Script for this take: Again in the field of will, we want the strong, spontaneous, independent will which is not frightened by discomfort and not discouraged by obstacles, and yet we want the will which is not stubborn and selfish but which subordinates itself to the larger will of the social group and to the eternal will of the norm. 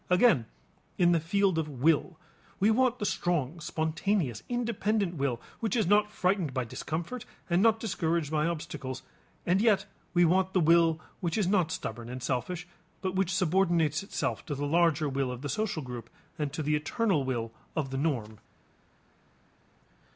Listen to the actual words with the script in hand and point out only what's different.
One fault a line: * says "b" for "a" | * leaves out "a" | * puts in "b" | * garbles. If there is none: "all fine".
all fine